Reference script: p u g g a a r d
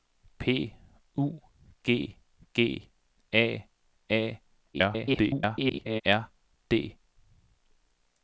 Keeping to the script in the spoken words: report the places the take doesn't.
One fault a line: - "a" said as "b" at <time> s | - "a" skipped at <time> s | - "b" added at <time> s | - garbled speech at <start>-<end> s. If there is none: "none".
- garbled speech at 4.7-6.0 s